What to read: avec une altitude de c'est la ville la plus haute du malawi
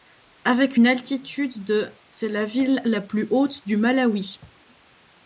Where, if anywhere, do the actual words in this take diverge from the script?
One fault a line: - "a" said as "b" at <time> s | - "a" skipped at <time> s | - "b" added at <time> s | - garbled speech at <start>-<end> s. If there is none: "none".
none